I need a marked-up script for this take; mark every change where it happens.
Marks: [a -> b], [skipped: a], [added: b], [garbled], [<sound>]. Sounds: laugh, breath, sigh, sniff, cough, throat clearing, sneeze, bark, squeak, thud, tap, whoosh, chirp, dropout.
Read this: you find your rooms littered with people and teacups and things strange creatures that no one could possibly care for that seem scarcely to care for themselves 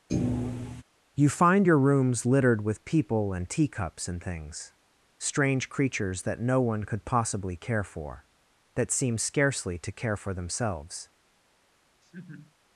[thud] you find your rooms littered with people and teacups and things strange creatures that no one could possibly care for that seem scarcely to care for themselves [laugh]